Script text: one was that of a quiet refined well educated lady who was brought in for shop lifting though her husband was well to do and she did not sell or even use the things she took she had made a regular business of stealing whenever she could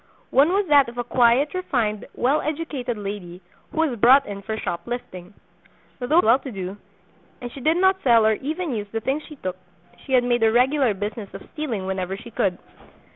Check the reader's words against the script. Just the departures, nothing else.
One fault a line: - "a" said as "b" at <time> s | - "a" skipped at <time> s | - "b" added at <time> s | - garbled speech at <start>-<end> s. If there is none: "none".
- "her husband was" skipped at 6.2 s